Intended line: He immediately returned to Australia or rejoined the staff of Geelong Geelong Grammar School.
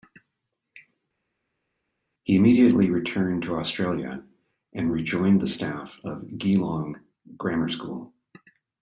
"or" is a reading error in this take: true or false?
true